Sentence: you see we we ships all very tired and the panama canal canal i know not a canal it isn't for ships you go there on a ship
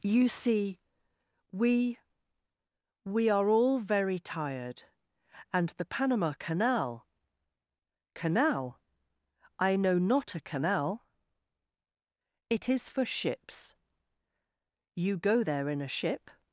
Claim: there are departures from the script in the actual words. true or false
true